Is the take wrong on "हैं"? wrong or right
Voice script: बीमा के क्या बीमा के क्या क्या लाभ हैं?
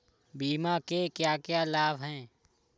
right